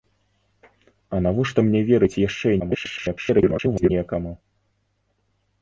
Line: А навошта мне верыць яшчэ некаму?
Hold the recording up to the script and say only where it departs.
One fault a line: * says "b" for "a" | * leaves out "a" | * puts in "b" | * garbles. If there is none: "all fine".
* garbles